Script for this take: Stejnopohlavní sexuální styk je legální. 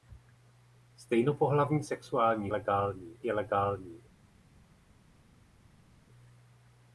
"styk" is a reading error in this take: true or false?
true